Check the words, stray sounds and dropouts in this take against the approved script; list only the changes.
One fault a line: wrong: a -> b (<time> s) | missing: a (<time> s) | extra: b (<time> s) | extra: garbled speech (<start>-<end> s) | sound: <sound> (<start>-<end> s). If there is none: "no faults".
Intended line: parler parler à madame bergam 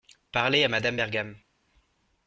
missing: parler (0.6 s)